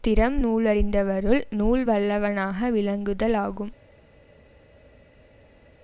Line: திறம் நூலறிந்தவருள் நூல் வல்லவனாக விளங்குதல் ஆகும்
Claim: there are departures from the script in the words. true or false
false